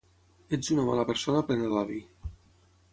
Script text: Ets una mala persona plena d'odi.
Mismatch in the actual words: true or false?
false